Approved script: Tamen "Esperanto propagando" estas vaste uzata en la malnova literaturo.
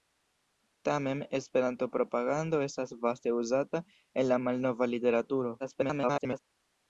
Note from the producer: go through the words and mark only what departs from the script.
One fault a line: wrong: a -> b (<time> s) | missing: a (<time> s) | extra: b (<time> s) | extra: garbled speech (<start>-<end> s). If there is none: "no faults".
extra: garbled speech (5.6-6.4 s)